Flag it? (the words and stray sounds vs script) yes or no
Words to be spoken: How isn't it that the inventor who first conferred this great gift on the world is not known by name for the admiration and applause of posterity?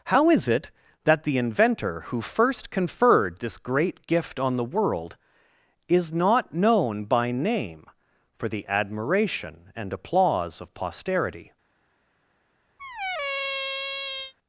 yes